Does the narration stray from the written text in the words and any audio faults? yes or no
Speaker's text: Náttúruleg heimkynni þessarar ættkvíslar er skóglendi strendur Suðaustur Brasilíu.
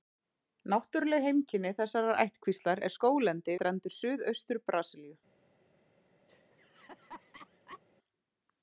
yes